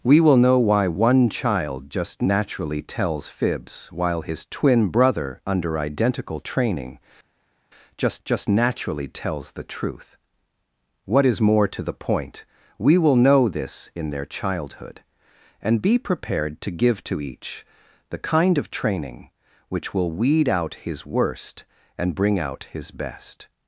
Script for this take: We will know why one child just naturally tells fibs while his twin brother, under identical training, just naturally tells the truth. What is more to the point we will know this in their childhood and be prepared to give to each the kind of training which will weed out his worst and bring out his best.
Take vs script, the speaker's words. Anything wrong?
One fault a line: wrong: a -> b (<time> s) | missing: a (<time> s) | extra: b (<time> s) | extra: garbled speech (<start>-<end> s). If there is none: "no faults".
extra: just (8.2 s)